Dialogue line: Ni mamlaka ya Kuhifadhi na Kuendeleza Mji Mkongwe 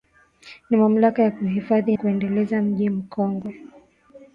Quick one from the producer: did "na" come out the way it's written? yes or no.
no